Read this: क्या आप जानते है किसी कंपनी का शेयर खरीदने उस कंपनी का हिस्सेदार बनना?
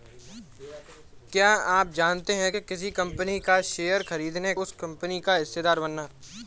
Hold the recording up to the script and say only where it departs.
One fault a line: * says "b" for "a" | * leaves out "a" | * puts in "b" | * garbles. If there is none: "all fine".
all fine